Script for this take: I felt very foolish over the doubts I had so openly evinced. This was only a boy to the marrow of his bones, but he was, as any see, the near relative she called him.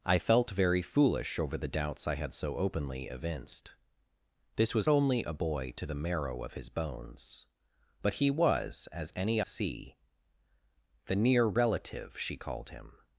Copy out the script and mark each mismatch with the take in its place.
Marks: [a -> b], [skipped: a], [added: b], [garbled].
I felt very foolish over the doubts I had so openly evinced. This was only a boy to the marrow of his bones, but he was, as any see, the near relative she called him.